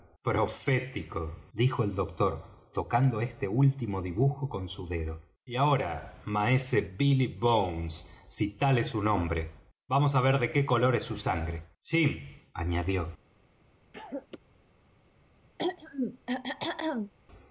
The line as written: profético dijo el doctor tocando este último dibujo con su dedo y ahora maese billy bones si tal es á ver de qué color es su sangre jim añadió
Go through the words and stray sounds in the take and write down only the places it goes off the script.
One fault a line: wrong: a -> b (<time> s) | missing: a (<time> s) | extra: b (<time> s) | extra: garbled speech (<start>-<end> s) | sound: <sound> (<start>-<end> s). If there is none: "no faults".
extra: su nombre vamos (8.9 s)
sound: cough (13.9-14.4 s)
sound: throat clearing (15.6-17.1 s)